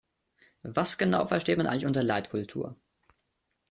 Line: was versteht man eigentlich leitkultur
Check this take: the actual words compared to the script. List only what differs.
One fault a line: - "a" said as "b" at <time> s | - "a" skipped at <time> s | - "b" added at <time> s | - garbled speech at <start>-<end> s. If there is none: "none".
- "genau" added at 1.0 s
- "unter" added at 1.8 s